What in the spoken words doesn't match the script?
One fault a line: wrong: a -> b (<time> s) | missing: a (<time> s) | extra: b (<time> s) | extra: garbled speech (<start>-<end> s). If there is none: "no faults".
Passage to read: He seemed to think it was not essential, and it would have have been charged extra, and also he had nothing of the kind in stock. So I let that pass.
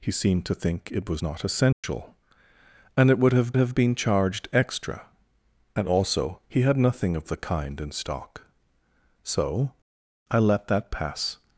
no faults